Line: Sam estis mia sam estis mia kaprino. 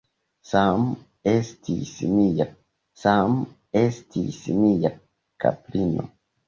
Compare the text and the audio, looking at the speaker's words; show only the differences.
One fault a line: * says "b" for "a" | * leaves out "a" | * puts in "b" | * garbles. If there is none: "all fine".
all fine